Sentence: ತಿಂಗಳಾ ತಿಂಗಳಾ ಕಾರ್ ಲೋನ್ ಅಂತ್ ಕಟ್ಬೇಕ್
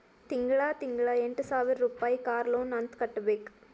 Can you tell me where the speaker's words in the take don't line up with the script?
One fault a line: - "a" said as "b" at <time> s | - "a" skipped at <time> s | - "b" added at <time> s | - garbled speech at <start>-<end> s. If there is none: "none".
- "ಎಂಟ ಸಾವಿರ್ ರುಪಾಯಿ" added at 1.2 s